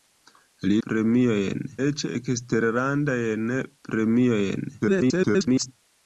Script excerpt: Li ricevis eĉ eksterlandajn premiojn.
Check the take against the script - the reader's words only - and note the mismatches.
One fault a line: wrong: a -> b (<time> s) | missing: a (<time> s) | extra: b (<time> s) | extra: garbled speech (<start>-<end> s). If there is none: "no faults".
wrong: ricevis -> premiojn (0.9 s)
extra: garbled speech (4.8-5.7 s)